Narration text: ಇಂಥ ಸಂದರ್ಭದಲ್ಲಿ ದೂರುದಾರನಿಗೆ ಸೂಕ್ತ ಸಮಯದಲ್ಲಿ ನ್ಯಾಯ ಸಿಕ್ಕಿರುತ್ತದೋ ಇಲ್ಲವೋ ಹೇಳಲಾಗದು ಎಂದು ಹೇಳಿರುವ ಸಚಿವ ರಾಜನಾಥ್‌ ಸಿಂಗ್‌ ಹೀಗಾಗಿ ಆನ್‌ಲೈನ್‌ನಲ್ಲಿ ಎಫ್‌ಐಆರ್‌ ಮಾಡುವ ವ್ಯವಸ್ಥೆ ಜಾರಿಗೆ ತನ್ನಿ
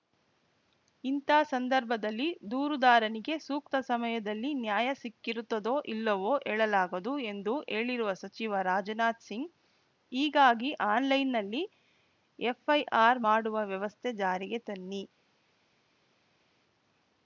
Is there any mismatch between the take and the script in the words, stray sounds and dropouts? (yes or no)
no